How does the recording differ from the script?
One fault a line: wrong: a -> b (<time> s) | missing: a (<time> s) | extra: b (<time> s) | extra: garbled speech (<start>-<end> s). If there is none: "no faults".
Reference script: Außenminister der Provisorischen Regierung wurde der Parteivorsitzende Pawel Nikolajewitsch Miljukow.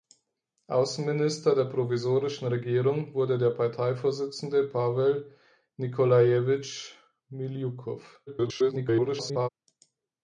extra: garbled speech (8.3-9.5 s)